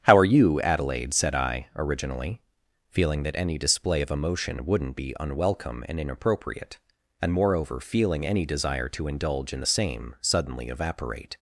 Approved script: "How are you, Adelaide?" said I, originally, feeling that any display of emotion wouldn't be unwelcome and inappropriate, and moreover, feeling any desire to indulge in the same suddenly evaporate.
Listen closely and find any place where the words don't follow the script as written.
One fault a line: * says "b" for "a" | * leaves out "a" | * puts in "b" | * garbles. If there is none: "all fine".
all fine